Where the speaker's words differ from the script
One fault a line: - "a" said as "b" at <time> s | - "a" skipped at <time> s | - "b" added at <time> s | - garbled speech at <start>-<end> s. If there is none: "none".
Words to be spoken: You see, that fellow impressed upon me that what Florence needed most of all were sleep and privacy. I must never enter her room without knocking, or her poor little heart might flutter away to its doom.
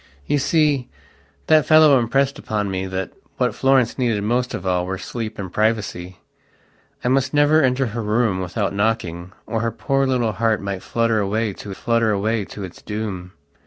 - "flutter away to" added at 11.7 s